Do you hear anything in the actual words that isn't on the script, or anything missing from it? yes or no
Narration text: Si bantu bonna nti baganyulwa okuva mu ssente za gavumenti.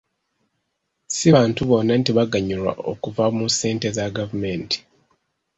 no